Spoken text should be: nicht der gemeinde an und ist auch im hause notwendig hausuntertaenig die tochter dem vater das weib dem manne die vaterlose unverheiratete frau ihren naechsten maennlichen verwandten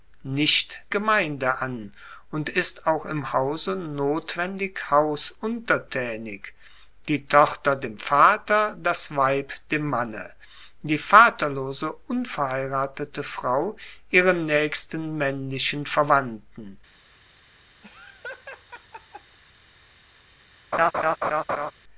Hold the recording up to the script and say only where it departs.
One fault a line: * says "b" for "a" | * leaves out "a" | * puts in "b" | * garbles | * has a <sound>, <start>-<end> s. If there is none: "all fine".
* leaves out "der"
* has a laugh, 17.8-19.4 s
* has a laugh, 20.7-21.7 s